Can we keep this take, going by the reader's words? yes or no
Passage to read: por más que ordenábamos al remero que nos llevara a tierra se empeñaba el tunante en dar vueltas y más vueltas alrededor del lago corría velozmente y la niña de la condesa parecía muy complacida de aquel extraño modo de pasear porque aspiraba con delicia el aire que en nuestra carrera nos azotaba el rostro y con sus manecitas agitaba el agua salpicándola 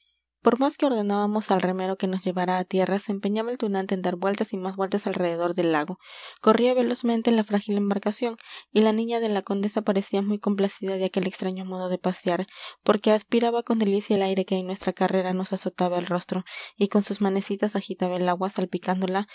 no